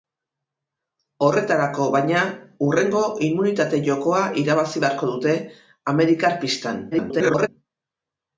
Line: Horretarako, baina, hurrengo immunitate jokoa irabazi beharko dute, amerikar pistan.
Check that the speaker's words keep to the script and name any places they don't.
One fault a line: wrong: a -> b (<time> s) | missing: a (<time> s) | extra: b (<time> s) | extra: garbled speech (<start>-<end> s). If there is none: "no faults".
extra: garbled speech (6.9-7.5 s)